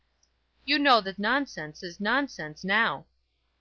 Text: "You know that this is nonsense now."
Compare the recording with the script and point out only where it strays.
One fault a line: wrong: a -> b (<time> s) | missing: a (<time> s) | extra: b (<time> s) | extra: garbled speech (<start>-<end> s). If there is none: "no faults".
wrong: this -> nonsense (1.2 s)